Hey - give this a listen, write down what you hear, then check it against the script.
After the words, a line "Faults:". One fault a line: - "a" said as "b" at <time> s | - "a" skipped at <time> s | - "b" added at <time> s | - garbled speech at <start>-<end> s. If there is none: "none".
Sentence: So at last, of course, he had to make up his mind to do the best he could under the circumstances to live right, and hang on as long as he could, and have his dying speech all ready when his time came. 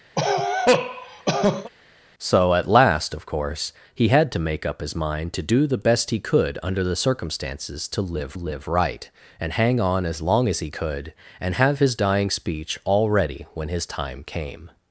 So at last, of course, he had to make up his mind to do the best he could under the circumstances to live live right, and hang on as long as he could, and have his dying speech all ready when his time came.
Faults:
- "live" added at 8.3 s